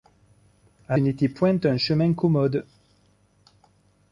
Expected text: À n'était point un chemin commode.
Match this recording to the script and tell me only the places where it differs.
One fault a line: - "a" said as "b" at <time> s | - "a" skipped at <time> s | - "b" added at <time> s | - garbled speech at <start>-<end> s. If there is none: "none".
none